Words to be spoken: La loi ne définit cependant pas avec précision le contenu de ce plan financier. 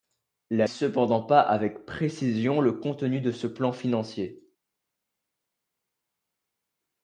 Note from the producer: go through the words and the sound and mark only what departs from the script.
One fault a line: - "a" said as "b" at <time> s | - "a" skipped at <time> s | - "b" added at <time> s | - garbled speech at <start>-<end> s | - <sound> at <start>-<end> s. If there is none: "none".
- "loi ne définit" skipped at 0.7 s